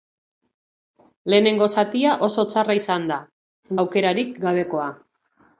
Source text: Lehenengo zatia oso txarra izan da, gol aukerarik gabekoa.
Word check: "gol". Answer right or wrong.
wrong